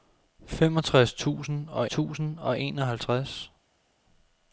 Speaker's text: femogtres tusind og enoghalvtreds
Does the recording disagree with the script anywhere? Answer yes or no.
yes